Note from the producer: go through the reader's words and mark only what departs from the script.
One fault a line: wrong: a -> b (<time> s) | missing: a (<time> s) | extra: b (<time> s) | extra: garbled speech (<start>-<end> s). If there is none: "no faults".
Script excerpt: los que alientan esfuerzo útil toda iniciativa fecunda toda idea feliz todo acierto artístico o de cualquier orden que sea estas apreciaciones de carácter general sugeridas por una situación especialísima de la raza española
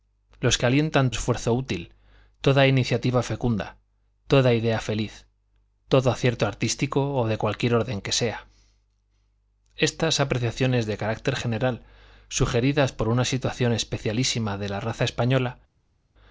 no faults